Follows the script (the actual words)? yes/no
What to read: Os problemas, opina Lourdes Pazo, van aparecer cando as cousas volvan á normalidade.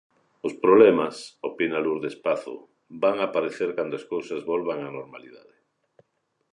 yes